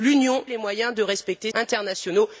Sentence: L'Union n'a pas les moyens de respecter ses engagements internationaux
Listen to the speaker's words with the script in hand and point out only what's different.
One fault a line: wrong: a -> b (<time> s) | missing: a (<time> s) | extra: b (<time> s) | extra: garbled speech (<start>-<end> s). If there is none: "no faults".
missing: n'a pas (0.4 s)
missing: ses engagements (1.5 s)